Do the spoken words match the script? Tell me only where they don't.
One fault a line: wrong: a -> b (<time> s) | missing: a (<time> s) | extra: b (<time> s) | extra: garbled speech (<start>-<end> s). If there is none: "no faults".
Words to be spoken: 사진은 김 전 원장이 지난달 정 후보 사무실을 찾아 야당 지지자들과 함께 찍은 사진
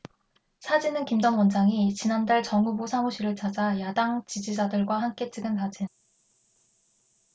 no faults